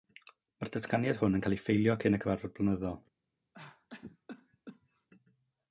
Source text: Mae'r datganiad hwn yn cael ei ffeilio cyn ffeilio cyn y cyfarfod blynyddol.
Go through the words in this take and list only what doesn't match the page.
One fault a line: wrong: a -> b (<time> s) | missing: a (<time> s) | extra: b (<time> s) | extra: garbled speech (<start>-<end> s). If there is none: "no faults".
missing: ffeilio cyn (2.2 s)